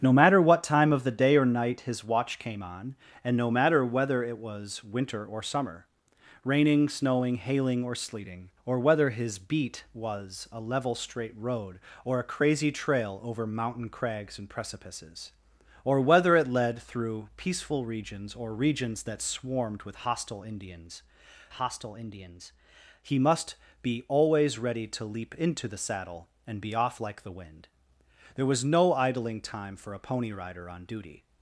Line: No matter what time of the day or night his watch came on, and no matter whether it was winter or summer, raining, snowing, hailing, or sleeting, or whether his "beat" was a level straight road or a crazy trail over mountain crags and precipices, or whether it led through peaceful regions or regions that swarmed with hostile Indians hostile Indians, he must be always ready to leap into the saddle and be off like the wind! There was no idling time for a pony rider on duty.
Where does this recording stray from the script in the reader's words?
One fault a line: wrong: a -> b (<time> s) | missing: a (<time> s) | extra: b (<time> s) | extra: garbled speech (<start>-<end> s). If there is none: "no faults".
no faults